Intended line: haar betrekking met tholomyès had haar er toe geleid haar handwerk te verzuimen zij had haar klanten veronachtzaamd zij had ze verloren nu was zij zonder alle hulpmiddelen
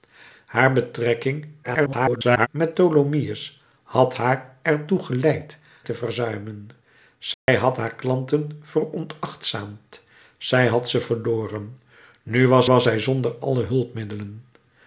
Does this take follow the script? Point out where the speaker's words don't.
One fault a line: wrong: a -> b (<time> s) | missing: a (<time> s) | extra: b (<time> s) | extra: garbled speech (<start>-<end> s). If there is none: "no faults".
extra: garbled speech (1.6-2.5 s)
missing: haar handwerk (5.6 s)
extra: was (12.7 s)